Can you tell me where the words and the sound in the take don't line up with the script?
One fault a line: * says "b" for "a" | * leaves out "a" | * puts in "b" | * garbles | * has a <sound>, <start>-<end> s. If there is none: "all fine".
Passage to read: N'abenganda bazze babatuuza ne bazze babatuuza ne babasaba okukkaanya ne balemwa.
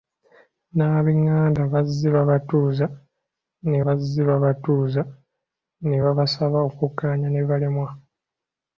all fine